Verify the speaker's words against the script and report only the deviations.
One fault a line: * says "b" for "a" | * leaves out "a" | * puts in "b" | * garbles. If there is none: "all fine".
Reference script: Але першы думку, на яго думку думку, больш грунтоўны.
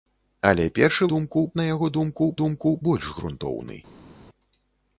all fine